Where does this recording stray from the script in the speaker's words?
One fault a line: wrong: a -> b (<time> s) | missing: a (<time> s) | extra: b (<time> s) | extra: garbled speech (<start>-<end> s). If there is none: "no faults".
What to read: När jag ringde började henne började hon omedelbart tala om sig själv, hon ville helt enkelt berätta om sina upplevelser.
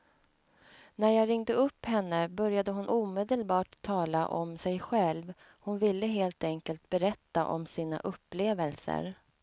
wrong: började -> upp (1.5 s)